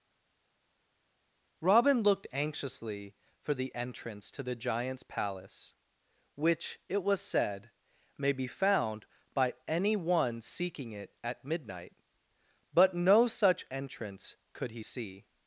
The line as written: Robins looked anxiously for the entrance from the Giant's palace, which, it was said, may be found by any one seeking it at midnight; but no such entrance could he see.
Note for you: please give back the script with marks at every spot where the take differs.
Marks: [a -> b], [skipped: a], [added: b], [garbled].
[Robins -> Robin] looked anxiously for the entrance [from -> to] the Giant's palace, which, it was said, may be found by any one seeking it at midnight; but no such entrance could he see.